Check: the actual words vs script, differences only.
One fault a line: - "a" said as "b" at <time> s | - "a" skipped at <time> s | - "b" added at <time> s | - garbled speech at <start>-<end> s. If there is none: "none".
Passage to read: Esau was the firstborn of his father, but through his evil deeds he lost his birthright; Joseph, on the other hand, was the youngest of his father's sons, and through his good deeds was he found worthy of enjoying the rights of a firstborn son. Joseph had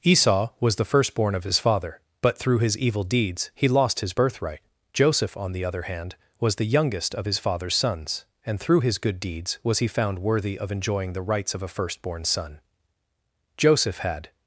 none